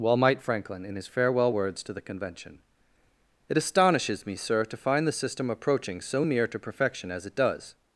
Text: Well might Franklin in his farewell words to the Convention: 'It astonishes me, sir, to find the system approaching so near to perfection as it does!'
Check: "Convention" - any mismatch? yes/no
no